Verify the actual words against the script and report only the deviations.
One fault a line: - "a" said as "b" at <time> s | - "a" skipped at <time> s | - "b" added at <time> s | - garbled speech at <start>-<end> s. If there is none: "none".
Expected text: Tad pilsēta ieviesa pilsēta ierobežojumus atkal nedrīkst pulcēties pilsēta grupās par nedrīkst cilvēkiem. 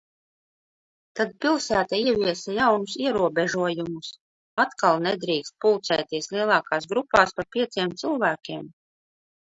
- "pilsēta" said as "jaunus" at 2.6 s
- "pilsēta" said as "lielākās" at 6.4 s
- "nedrīkst" said as "pieciem" at 7.6 s